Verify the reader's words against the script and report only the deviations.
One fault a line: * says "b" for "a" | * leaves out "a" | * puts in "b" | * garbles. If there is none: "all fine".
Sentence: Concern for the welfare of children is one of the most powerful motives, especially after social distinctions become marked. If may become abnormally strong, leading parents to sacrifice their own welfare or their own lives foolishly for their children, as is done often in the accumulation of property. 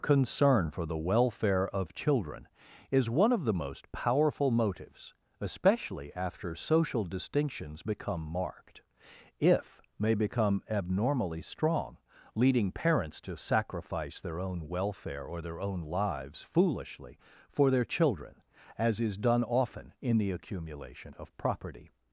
all fine